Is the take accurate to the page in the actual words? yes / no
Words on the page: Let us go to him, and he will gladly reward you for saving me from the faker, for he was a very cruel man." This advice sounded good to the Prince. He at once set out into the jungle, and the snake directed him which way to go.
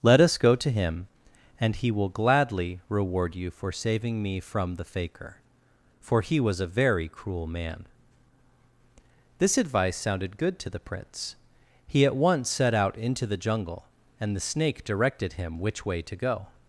yes